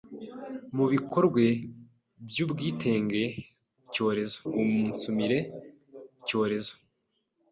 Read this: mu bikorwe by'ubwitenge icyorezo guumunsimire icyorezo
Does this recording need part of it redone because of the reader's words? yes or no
no